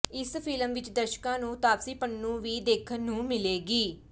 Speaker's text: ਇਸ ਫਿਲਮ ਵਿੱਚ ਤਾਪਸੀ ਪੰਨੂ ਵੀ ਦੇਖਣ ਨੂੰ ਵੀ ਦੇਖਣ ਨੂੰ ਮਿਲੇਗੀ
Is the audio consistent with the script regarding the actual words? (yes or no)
no